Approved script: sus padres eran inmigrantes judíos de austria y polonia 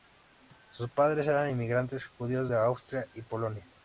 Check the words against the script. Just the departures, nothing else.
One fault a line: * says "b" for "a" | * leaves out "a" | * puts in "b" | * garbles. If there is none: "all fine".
all fine